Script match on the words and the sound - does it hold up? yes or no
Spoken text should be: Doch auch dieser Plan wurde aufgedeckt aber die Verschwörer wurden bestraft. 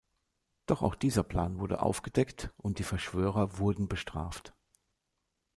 no